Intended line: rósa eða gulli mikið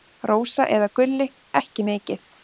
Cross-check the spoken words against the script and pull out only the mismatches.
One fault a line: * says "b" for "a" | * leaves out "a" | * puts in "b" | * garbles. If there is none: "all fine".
* puts in "ekki"